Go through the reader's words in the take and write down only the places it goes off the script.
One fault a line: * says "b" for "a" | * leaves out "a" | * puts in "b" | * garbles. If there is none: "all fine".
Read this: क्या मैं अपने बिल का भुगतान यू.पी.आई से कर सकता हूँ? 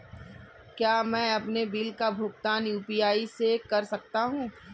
all fine